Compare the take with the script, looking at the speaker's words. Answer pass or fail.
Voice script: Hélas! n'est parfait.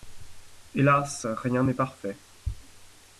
fail